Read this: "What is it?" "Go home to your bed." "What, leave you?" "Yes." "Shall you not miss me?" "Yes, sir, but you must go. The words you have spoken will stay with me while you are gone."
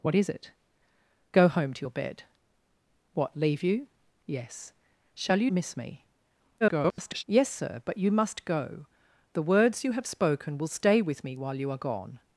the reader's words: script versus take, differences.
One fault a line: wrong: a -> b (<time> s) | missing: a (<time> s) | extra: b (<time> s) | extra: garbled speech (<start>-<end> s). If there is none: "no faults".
missing: not (5.5 s)
extra: garbled speech (6.6-7.2 s)